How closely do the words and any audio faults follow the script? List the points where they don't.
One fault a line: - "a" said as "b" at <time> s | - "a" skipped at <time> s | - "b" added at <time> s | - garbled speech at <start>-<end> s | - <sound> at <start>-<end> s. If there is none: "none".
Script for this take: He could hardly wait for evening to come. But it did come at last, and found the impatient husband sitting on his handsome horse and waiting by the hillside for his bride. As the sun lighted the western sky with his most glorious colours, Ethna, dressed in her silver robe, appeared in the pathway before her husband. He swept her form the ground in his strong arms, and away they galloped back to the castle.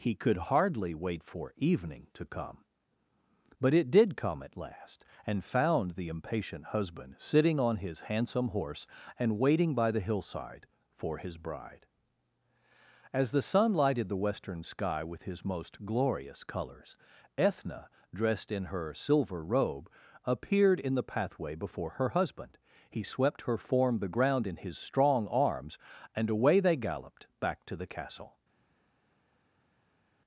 none